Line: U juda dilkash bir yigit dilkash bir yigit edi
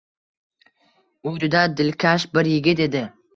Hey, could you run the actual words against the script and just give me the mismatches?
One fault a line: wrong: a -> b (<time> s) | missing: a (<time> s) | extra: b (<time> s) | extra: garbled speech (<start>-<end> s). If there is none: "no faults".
missing: dilkash bir yigit (2.8 s)